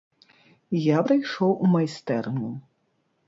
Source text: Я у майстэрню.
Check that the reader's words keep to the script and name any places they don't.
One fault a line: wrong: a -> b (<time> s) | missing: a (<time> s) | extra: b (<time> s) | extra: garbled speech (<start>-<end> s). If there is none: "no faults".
extra: прыйшоў (1.0 s)